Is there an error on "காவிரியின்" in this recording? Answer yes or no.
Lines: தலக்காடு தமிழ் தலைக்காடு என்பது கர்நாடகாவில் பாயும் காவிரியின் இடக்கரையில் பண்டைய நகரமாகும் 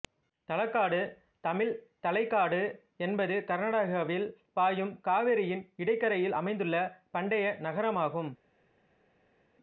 no